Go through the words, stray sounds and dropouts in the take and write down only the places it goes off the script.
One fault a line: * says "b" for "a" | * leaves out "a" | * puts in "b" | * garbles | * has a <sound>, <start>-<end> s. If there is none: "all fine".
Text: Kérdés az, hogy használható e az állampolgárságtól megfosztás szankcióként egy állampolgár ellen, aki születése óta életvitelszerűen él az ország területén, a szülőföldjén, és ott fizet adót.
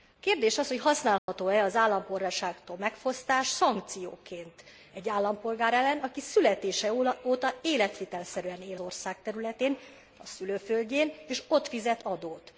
* has a dropout, 1.2-1.3 s
* leaves out "az"